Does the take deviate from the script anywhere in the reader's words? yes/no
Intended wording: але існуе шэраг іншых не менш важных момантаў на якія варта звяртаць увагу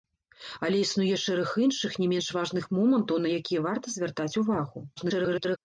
yes